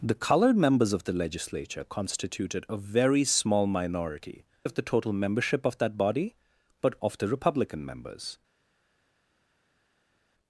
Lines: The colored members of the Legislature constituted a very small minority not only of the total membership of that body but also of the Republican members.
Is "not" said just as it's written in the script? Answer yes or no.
no